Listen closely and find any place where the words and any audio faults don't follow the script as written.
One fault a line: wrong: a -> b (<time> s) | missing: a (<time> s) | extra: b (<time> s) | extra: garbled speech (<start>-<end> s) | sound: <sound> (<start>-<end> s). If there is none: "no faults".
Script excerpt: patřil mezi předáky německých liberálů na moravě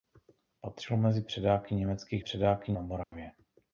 wrong: liberálů -> předáky (2.2 s)
sound: dropout (3.0-3.1 s)